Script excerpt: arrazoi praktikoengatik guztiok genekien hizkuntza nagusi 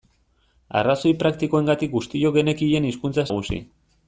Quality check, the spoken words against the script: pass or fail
pass